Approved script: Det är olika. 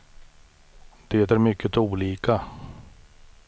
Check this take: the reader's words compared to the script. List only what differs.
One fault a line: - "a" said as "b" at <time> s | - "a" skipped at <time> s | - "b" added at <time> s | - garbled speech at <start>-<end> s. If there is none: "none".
- "mycket" added at 1.4 s